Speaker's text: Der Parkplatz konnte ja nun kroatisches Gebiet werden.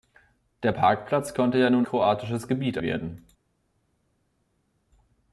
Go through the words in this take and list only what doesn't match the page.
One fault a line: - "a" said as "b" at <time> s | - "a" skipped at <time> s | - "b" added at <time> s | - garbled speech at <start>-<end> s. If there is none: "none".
none